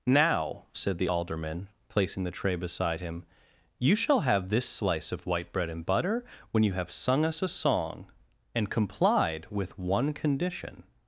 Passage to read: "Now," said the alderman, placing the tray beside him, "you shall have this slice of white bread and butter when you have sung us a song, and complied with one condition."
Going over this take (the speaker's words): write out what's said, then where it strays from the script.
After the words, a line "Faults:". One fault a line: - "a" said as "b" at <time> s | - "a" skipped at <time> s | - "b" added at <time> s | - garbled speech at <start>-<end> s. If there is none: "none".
"Now," said the alderman, placing the tray beside him, "you shall have this slice of white bread and butter when you have sung us a song, and complied with one condition."
Faults:
none